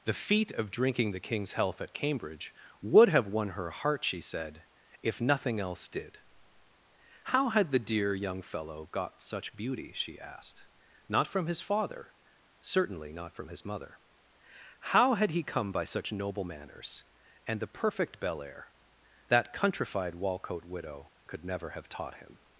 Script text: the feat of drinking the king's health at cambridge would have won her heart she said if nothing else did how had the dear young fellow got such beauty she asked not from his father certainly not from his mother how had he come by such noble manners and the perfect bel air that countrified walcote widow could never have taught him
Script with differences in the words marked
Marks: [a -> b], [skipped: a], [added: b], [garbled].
the feat of drinking the king's health at cambridge would have won her heart she said if nothing else did how had the dear young fellow got such beauty she asked not from his father certainly not from his mother how had he come by such noble manners and the perfect bel air that countrified walcote widow could never have taught him